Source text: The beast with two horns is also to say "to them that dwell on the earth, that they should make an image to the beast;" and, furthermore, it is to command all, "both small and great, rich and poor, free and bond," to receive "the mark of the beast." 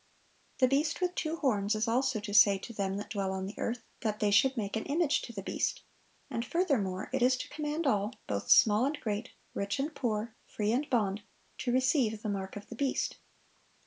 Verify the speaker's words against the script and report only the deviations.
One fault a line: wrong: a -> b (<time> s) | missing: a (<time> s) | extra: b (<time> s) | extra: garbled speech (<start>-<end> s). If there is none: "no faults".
no faults